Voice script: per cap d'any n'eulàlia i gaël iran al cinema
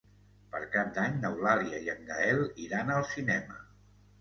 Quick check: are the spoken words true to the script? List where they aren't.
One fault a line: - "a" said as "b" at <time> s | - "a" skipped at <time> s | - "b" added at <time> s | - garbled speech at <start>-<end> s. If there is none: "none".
- "en" added at 1.9 s